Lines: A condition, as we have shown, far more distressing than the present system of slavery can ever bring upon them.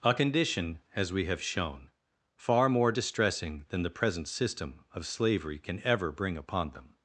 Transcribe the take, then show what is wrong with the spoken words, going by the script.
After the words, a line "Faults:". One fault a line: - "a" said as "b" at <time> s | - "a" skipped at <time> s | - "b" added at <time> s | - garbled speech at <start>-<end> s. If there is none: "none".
A condition, as we have shown, far more distressing than the present system of slavery can ever bring upon them.
Faults:
none